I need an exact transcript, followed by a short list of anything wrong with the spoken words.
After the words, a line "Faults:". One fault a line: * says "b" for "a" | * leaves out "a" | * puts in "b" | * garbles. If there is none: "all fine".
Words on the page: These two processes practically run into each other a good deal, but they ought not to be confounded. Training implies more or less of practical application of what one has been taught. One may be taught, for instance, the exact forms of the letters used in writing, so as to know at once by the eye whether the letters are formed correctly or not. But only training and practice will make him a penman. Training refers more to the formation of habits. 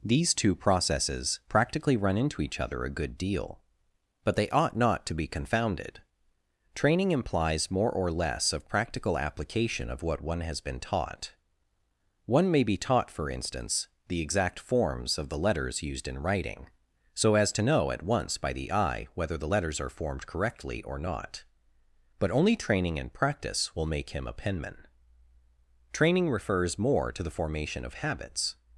These two processes practically run into each other a good deal, but they ought not to be confounded. Training implies more or less of practical application of what one has been taught. One may be taught, for instance, the exact forms of the letters used in writing, so as to know at once by the eye whether the letters are formed correctly or not. But only training and practice will make him a penman. Training refers more to the formation of habits.
Faults:
all fine